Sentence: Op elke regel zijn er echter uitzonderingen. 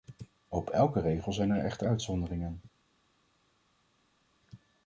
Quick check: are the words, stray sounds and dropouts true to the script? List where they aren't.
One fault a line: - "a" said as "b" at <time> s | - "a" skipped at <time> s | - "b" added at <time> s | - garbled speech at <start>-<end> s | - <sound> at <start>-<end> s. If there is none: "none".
none